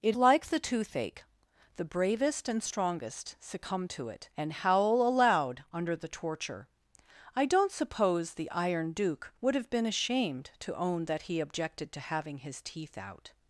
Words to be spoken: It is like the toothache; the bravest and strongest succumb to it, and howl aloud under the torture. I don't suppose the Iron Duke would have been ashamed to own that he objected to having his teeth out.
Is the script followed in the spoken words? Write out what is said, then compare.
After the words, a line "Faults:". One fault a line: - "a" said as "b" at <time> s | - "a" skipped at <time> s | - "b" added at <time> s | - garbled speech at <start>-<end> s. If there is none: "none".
It like the toothache; the bravest and strongest succumb to it, and howl aloud under the torture. I don't suppose the Iron Duke would have been ashamed to own that he objected to having his teeth out.
Faults:
- "is" skipped at 0.2 s